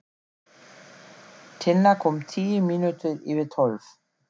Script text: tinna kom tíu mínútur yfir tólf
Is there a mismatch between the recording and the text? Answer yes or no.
no